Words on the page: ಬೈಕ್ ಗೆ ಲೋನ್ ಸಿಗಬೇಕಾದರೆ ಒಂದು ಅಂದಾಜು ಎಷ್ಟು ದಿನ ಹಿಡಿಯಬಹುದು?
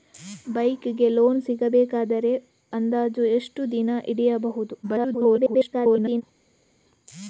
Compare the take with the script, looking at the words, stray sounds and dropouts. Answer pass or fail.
fail